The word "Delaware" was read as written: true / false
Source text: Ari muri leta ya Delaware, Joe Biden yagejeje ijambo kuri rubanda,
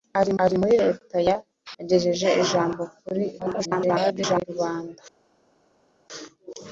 false